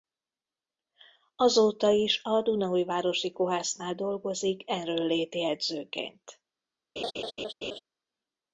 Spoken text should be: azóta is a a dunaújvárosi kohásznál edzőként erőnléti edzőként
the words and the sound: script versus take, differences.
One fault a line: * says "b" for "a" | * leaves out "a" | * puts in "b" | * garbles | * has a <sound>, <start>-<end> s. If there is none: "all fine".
* leaves out "a"
* says "dolgozik" for "edzőként"
* has a laugh, 7.0-7.8 s